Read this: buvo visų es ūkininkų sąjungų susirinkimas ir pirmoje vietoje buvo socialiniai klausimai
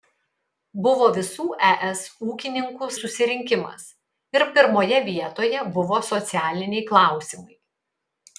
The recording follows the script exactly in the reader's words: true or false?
false